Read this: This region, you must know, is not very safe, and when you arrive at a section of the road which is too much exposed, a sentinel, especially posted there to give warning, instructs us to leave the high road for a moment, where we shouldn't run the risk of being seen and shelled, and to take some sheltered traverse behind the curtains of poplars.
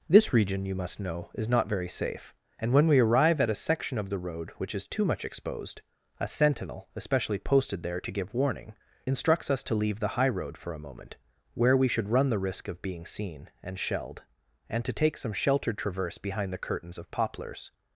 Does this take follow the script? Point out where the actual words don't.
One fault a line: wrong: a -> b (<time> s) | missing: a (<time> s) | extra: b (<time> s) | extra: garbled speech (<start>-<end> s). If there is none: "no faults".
wrong: you -> we (2.9 s)
wrong: shouldn't -> should (11.9 s)